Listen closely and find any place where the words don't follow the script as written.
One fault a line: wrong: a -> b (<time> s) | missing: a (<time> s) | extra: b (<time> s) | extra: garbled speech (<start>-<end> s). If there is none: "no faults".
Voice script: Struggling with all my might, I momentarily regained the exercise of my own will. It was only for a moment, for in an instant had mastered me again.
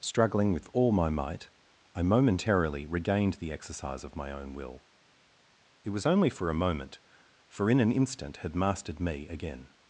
no faults